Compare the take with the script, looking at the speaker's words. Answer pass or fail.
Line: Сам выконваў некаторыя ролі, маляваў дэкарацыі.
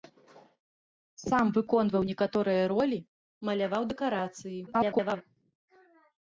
fail